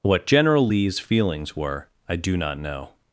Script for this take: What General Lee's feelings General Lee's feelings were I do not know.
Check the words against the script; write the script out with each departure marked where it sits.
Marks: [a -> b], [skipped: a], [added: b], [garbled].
What General Lee's feelings [skipped: General Lee's feelings] were I do not know.